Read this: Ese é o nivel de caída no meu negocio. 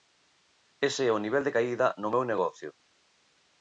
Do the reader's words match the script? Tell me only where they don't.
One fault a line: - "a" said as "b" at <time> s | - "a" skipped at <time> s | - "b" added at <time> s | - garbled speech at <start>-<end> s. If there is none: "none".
none